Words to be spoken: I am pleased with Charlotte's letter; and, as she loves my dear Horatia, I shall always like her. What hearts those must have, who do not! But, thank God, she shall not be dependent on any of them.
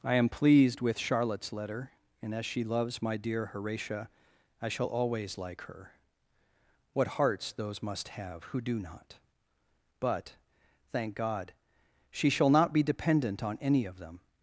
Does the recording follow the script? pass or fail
pass